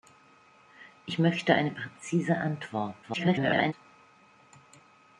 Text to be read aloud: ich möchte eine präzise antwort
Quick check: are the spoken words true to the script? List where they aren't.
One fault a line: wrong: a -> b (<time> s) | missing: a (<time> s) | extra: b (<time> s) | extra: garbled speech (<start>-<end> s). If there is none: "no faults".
extra: garbled speech (3.0-3.7 s)